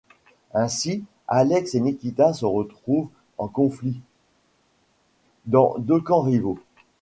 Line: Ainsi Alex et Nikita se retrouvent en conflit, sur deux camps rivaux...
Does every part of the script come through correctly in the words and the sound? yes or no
no